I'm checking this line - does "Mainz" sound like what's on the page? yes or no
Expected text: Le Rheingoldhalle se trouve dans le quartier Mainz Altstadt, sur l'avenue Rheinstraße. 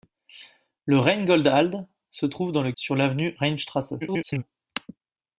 no